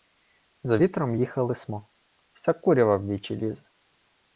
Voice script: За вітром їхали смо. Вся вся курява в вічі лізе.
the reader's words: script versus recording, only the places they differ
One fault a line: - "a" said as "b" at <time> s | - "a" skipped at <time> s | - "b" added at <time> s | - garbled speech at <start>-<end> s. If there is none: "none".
- "вся" skipped at 2.5 s